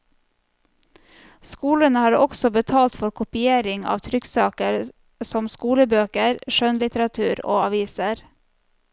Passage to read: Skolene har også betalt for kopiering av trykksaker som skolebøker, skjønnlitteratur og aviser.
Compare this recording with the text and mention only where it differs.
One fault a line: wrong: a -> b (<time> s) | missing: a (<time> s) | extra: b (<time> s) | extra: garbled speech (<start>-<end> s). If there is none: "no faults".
no faults